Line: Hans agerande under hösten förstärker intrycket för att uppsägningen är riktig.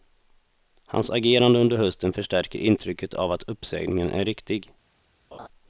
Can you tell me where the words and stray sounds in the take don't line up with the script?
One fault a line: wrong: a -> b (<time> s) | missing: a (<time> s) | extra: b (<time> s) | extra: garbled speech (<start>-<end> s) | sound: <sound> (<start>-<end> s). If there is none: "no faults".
wrong: för -> av (3.1 s)
sound: laugh (5.3-5.5 s)